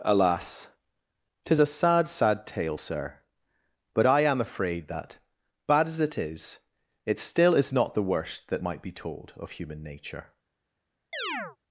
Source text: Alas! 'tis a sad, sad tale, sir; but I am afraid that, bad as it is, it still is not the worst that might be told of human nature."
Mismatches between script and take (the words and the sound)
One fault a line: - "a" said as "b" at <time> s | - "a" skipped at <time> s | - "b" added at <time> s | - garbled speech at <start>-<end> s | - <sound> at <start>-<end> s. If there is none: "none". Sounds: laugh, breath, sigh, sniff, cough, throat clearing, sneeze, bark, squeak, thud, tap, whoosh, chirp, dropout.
- chirp at 11.1-11.6 s